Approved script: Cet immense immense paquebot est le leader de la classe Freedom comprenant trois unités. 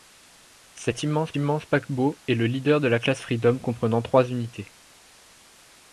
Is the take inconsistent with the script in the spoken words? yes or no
no